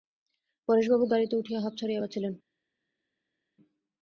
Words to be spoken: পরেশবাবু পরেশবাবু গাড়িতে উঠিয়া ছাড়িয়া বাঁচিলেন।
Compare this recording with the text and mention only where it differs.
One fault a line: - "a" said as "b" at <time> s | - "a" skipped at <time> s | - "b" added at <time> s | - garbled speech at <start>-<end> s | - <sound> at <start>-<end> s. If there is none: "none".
- "পরেশবাবু" skipped at 1.1 s
- "হাঁপ" added at 1.6 s